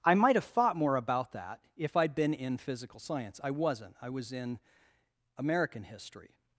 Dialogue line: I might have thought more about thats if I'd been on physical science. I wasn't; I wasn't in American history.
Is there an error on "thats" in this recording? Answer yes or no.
yes